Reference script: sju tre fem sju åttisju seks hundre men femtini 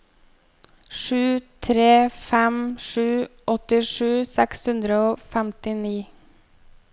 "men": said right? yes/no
no